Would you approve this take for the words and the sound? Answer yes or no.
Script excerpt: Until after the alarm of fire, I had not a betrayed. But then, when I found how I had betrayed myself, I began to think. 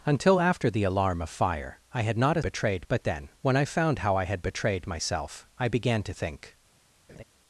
no